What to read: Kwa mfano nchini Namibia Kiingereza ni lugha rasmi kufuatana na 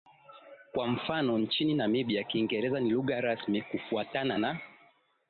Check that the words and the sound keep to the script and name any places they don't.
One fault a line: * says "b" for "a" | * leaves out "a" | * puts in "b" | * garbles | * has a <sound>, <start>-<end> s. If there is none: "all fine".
all fine